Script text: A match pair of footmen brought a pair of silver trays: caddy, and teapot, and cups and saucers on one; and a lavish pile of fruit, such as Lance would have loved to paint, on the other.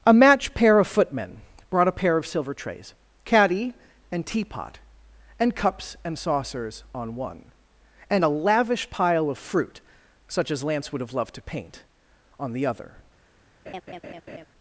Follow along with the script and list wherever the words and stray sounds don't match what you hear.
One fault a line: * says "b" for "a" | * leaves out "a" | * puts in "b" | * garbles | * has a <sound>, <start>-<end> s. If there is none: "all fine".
* has a laugh, 13.7-14.5 s